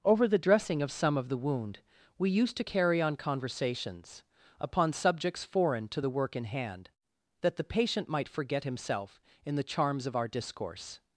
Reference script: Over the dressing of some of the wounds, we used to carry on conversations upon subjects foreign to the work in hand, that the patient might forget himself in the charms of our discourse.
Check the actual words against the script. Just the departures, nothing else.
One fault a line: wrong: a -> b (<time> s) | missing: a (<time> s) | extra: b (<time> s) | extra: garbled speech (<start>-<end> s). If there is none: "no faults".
wrong: wounds -> wound (1.4 s)